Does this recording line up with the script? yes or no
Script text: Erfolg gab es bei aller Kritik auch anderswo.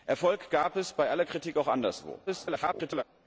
no